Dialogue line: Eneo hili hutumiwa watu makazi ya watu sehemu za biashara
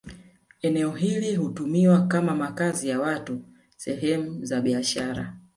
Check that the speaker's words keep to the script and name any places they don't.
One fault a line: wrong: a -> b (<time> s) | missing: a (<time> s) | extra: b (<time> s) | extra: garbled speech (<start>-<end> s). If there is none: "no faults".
wrong: watu -> kama (2.1 s)